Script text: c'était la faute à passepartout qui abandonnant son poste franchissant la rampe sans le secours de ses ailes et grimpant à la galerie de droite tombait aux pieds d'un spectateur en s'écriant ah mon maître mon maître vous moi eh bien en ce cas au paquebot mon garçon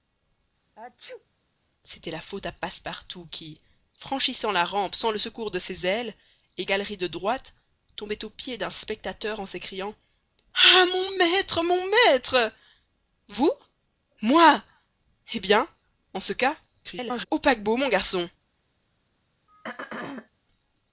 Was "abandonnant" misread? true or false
true